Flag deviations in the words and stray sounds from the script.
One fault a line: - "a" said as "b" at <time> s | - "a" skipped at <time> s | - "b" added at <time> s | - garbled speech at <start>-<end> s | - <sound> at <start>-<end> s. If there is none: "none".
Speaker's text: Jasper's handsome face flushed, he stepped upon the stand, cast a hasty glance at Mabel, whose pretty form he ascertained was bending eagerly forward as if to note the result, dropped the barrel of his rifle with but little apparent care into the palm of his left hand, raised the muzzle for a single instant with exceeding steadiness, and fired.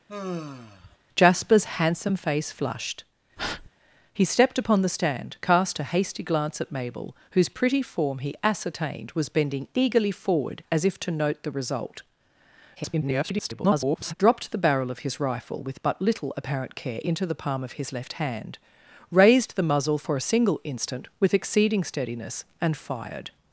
- sigh at 0.1-1.0 s
- breath at 3.4-3.7 s
- garbled speech at 12.8-14.1 s